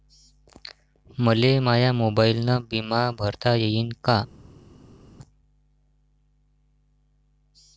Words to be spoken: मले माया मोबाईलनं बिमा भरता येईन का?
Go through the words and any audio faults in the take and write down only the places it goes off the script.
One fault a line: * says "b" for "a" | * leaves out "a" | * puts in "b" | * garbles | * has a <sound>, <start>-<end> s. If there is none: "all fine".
all fine